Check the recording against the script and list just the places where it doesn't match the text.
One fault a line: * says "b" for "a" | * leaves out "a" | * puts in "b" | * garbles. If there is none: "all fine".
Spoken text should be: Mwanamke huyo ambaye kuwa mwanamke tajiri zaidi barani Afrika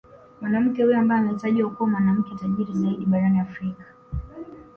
* puts in "ametajwa"